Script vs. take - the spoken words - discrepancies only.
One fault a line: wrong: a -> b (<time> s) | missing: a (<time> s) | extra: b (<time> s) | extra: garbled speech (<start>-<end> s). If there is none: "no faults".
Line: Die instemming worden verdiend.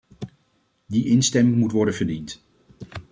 extra: moet (1.6 s)